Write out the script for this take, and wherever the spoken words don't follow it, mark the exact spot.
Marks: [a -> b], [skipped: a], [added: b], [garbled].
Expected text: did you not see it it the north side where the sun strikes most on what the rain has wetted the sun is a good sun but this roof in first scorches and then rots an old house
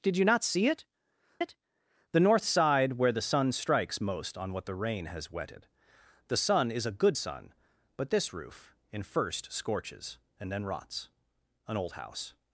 did you not see it it the north side where the sun strikes most on what the rain has wetted the sun is a good sun but this roof in first scorches and then rots an old house